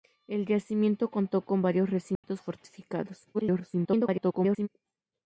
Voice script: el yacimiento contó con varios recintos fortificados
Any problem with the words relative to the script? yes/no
yes